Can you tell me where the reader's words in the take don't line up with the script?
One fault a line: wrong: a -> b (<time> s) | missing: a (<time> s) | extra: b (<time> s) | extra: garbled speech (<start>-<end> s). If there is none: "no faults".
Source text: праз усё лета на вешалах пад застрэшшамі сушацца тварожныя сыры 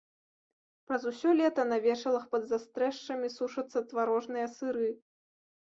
no faults